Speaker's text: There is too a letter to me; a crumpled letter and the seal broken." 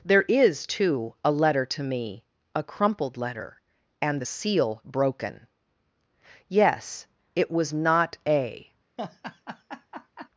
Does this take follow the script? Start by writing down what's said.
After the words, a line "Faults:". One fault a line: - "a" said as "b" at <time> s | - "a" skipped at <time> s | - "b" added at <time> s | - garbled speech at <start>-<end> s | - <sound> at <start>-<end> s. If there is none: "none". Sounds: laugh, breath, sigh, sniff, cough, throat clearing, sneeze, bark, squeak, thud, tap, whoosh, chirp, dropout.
There is too a letter to me; a crumpled letter and the seal broken." Yes; it was not a
Faults:
- "Yes it was not a" added at 6.5 s
- laugh at 9.0-10.3 s